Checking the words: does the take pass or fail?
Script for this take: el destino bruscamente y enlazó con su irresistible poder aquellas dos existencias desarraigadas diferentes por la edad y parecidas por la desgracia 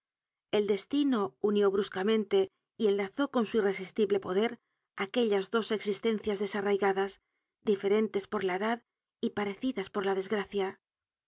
fail